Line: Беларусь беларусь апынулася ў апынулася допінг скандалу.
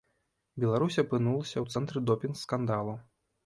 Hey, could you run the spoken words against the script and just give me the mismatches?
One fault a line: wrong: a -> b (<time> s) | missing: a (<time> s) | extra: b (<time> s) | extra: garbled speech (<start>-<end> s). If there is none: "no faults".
missing: беларусь (1.0 s)
wrong: апынулася -> цэнтры (1.7 s)